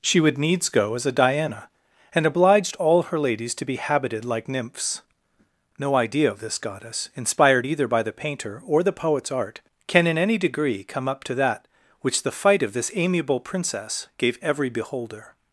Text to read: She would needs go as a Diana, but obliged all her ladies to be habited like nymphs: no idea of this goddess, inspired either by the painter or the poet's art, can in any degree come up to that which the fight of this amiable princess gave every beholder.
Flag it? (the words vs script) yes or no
yes